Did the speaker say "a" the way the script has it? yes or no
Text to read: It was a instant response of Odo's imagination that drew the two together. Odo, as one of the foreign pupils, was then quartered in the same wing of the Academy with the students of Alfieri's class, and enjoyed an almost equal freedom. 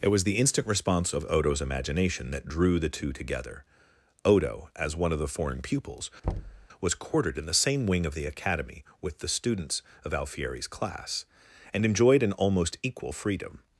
no